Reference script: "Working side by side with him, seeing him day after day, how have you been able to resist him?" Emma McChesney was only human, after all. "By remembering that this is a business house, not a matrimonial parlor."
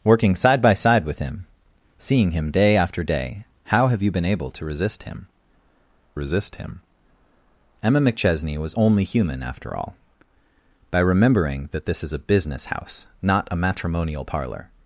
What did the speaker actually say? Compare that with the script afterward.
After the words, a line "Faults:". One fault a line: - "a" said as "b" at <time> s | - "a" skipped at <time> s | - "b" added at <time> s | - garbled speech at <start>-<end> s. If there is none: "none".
"Working side by side with him, seeing him day after day, how have you been able to resist him resist him?" Emma McChesney was only human, after all. "By remembering that this is a business house, not a matrimonial parlor."
Faults:
- "resist him" added at 6.2 s